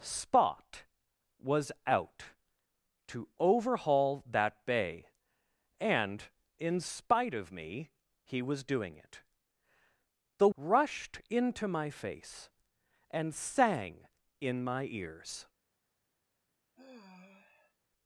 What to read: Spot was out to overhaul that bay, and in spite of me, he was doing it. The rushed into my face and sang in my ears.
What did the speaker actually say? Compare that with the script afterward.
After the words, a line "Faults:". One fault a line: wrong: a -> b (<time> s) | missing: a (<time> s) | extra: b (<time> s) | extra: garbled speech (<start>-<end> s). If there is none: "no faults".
Spot was out to overhaul that bay, and in spite of me, he was doing it. The rushed into my face and sang in my ears.
Faults:
no faults